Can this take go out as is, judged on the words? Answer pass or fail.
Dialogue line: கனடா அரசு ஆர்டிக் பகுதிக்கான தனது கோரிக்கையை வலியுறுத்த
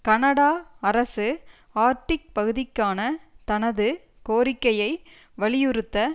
pass